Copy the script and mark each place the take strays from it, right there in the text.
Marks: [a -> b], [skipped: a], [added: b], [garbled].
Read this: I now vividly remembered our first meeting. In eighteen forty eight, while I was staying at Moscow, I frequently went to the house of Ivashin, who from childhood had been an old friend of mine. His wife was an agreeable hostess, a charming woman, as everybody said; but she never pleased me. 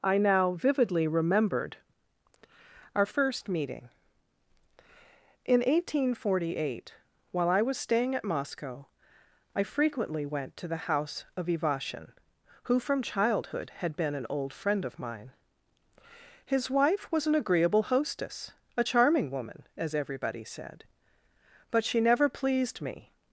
I now vividly remembered our first meeting. In eighteen forty eight, while I was staying at Moscow, I frequently went to the house of Ivashin, who from childhood had been an old friend of mine. His wife was an agreeable hostess, a charming woman, as everybody said; but she never pleased me.